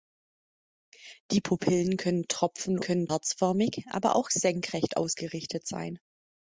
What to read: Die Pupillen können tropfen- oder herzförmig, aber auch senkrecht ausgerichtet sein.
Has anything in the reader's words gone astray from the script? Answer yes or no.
yes